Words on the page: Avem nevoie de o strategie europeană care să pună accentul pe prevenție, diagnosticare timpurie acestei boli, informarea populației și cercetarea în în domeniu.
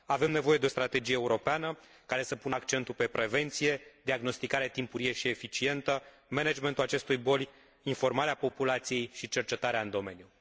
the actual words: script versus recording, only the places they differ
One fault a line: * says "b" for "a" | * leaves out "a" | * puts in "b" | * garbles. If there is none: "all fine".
* puts in "și eficientă managementul"
* leaves out "în"